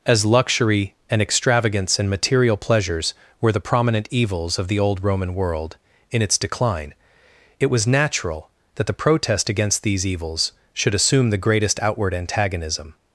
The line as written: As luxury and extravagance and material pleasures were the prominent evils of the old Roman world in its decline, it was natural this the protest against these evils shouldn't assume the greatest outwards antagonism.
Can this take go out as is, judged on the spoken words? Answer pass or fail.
fail